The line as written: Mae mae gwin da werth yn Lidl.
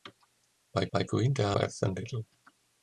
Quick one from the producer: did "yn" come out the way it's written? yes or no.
yes